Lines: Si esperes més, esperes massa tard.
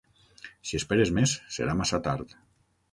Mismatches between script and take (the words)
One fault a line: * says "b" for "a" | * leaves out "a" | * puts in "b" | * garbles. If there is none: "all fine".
* says "serà" for "esperes"